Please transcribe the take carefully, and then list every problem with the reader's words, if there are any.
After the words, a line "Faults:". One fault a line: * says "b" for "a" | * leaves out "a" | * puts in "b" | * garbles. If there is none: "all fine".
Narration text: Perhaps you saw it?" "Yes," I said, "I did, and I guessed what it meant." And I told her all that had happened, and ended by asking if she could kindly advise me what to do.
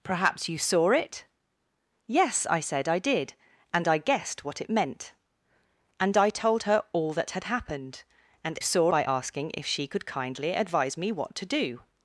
Perhaps you saw it?" "Yes," I said, "I did, and I guessed what it meant." And I told her all that had happened, and saw by asking if she could kindly advise me what to do.
Faults:
* says "saw" for "ended"